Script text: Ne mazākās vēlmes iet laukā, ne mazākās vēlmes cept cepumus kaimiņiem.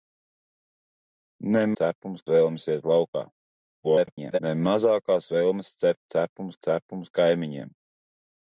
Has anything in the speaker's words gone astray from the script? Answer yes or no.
yes